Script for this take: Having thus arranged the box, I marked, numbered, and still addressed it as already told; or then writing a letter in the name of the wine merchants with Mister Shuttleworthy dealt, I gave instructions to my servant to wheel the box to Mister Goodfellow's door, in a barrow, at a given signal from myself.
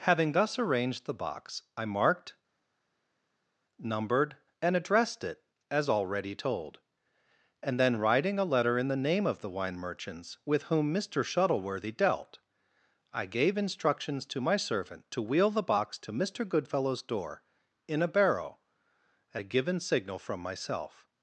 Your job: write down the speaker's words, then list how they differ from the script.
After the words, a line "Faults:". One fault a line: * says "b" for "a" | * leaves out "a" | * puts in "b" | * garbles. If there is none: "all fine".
Having thus arranged the box, I marked, numbered, and addressed it as already told; and then writing a letter in the name of the wine merchants with whom Mister Shuttleworthy dealt, I gave instructions to my servant to wheel the box to Mister Goodfellow's door, in a barrow, at a given signal from myself.
Faults:
* leaves out "still"
* says "and" for "or"
* puts in "whom"